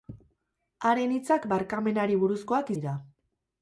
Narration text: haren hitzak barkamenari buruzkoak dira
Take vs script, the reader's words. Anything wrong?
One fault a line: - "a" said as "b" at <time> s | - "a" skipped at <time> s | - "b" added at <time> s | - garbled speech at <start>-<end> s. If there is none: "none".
none